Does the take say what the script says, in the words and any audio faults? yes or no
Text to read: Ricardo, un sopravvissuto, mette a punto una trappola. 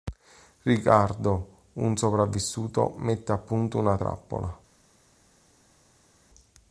yes